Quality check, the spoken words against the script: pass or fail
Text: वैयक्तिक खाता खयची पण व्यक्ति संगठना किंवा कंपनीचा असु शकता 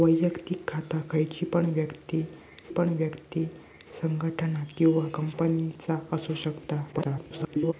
fail